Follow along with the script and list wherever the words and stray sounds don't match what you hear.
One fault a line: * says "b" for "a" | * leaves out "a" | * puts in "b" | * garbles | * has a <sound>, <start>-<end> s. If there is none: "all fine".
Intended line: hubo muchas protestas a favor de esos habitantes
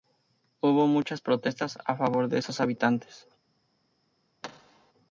* has a thud, 4.4-4.9 s